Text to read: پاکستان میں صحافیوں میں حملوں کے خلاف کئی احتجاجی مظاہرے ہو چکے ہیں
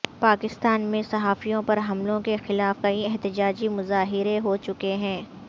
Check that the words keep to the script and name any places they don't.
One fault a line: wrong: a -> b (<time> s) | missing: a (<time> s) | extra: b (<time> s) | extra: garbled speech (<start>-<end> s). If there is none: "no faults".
wrong: میں -> پر (1.6 s)